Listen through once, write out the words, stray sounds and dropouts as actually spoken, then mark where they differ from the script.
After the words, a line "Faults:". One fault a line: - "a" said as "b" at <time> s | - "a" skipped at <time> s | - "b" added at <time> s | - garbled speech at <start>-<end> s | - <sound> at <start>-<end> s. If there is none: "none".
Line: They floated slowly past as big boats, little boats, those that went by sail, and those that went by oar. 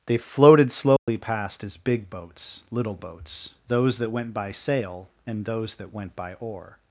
They floated slowly past as big boats, little boats, those that went by sail, and those that went by oar.
Faults:
- dropout at 1.0-1.1 s